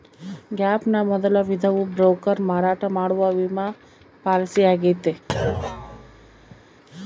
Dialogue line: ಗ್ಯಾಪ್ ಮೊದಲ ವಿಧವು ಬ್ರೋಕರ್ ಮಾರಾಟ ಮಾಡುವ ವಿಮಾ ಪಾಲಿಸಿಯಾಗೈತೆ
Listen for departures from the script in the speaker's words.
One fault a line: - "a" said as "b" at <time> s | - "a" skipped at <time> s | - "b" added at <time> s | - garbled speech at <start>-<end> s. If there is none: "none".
- "ನ" added at 0.9 s